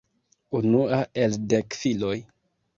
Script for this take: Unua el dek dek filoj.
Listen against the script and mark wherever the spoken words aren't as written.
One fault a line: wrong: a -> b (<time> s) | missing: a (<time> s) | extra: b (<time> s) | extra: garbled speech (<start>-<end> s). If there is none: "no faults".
missing: dek (1.8 s)